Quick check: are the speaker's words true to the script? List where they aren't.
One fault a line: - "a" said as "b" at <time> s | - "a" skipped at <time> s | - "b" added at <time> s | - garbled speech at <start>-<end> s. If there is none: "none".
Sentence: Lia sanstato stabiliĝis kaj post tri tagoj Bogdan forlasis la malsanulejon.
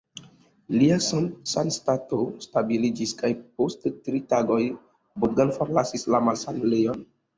none